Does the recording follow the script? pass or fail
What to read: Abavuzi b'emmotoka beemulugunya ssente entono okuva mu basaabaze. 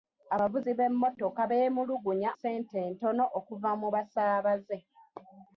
pass